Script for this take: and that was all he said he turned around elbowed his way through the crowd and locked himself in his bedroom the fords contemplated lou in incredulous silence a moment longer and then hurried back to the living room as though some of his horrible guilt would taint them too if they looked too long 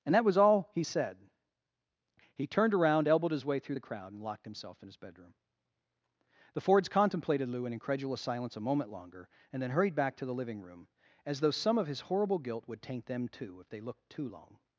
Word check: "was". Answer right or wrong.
right